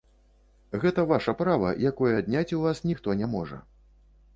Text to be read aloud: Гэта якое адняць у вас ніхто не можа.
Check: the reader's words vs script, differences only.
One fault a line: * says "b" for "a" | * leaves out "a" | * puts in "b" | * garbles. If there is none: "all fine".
* puts in "ваша права"